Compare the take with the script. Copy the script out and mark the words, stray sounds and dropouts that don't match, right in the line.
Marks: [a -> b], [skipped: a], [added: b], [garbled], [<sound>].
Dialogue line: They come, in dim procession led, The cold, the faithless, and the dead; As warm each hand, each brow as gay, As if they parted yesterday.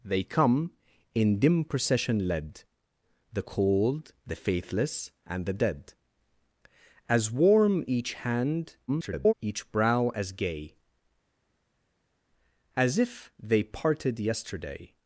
They come, in dim procession led, The cold, the faithless, and the dead; As warm each hand, [garbled] each brow as gay, As if they parted yesterday.